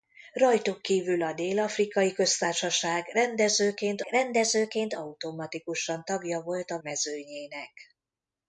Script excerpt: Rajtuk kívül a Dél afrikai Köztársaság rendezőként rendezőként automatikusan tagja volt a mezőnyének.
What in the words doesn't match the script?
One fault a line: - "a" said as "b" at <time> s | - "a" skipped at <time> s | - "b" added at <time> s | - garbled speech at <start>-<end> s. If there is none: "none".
none